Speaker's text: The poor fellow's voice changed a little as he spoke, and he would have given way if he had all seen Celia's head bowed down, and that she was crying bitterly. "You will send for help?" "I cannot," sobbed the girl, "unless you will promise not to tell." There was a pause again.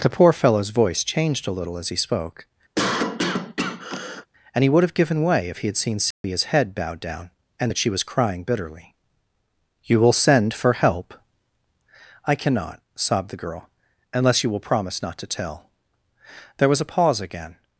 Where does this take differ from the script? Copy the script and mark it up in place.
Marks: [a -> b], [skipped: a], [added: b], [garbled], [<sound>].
The poor fellow's voice changed a little as he spoke, [cough] and he would have given way if he had [skipped: all] seen Celia's [dropout] head bowed down, and that she was crying bitterly. "You will send for help?" "I cannot," sobbed the girl, "unless you will promise not to tell." There was a pause again.